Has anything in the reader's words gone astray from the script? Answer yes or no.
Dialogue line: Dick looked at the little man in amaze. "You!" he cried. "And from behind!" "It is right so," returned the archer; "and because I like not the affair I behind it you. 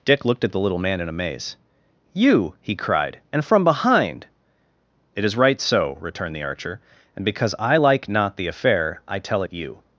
yes